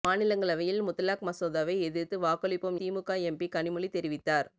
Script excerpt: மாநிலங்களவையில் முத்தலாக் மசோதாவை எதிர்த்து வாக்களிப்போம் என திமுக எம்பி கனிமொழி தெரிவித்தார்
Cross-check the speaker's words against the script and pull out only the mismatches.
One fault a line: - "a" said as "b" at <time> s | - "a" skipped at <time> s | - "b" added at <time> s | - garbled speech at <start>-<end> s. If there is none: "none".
- "என" skipped at 2.8 s